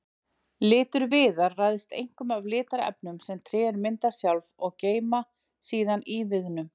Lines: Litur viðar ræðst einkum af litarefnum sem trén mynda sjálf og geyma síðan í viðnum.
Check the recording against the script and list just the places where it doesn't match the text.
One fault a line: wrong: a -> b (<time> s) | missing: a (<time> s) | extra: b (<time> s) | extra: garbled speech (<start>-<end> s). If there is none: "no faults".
no faults